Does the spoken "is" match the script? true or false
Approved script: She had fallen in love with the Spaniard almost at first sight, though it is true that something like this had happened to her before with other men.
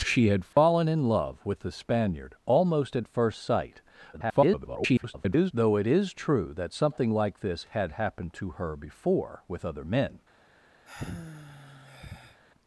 true